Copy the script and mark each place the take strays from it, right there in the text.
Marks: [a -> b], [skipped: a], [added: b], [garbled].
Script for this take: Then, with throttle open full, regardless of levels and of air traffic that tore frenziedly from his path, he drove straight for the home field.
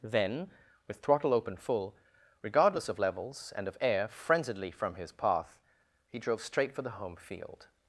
Then, with throttle open full, regardless of levels and of air [skipped: traffic that tore] frenziedly from his path, he drove straight for the home field.